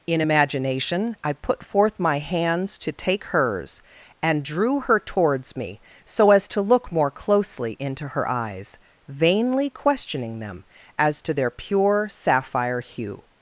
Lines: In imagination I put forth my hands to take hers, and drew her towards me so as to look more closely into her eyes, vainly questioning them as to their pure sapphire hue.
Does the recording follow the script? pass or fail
pass